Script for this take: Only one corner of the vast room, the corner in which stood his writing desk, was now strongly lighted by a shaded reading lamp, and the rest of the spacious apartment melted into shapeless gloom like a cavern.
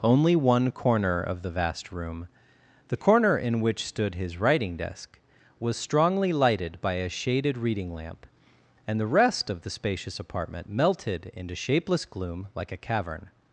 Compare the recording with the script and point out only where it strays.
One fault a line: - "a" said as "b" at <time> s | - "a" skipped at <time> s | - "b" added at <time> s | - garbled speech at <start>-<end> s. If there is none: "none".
- "now" skipped at 5.8 s